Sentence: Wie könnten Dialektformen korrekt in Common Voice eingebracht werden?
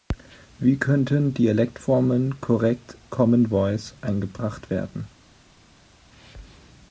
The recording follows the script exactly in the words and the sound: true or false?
false